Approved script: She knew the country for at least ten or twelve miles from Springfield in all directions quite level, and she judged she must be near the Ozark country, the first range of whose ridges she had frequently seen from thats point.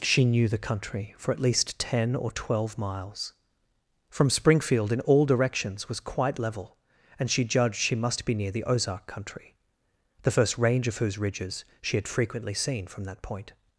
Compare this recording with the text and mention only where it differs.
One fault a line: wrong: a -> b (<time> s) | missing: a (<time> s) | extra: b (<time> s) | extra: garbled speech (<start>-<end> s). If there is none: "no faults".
extra: was (5.9 s)
wrong: thats -> that (13.0 s)